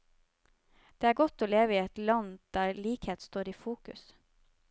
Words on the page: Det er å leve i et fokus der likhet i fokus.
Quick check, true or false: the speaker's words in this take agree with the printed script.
false